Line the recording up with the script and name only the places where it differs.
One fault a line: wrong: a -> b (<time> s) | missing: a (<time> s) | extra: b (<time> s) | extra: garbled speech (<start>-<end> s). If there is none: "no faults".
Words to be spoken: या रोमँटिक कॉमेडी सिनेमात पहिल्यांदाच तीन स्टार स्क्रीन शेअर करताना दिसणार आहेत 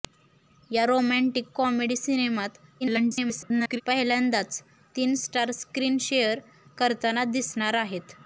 extra: garbled speech (2.8-3.8 s)